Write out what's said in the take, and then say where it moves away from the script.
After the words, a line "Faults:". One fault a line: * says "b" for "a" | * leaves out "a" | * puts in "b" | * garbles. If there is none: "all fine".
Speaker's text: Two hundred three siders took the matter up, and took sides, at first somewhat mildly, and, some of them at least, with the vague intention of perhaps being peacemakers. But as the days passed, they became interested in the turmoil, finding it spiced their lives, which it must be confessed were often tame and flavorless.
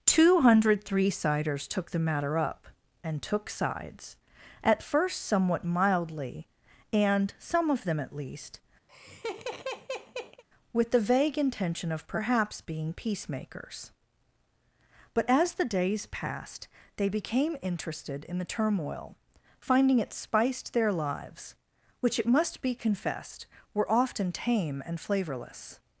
Two hundred three siders took the matter up, and took sides, at first somewhat mildly, and, some of them at least, with the vague intention of perhaps being peacemakers. But as the days passed, they became interested in the turmoil, finding it spiced their lives, which it must be confessed were often tame and flavorless.
Faults:
all fine